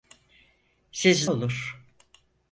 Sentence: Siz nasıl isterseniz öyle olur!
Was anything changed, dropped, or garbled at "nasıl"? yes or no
yes